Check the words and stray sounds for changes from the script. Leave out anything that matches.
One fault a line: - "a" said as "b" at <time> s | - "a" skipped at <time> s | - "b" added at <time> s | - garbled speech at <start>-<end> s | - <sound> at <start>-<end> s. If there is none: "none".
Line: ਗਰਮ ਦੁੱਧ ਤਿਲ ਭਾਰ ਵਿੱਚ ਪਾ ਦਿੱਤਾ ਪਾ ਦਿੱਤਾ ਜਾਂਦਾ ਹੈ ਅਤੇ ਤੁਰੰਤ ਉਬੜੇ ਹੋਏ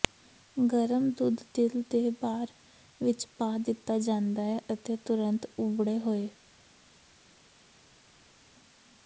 - "ਦੇ" added at 1.9 s
- "ਪਾ ਦਿੱਤਾ" skipped at 4.0 s